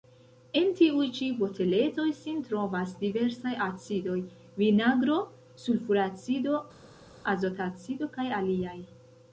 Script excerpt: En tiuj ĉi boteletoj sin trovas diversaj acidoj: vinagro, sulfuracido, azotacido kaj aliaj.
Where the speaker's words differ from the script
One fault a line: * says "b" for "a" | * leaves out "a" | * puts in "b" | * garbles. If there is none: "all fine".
all fine